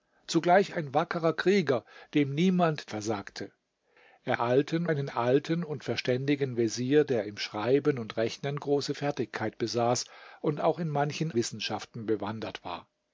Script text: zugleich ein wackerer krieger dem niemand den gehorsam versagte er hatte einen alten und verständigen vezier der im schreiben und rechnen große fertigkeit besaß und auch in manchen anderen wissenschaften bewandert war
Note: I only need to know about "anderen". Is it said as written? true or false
false